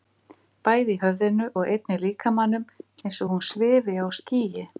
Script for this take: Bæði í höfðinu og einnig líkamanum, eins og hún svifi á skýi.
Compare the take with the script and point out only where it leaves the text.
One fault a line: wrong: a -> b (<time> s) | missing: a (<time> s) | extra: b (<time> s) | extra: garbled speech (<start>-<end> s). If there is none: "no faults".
no faults